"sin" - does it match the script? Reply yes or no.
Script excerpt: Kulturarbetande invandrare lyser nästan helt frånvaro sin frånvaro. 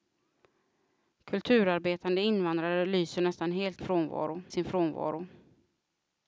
yes